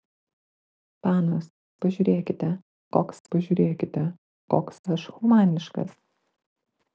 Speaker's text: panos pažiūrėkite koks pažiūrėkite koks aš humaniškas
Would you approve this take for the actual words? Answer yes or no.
yes